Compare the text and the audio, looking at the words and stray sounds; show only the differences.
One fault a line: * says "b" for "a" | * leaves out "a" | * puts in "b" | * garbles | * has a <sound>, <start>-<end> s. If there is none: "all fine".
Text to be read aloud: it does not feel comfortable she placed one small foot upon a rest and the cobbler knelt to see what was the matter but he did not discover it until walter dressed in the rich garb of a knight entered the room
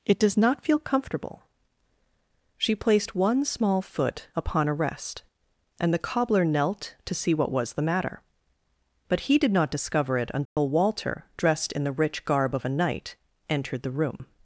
* has a dropout, 10.5-10.6 s